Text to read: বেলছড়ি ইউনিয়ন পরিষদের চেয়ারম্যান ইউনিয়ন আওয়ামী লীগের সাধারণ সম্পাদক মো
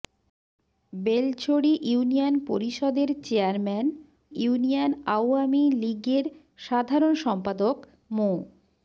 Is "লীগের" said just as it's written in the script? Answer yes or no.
yes